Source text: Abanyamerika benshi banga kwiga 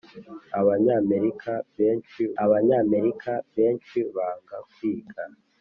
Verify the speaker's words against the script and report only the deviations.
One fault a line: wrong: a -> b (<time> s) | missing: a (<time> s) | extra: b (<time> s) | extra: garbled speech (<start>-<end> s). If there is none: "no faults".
extra: abanyamerika benshi (2.4 s)